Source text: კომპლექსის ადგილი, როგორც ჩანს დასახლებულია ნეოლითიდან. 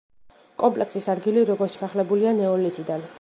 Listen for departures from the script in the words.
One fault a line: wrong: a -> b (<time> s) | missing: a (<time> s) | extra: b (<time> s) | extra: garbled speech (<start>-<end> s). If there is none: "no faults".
missing: ჩანს (1.8 s)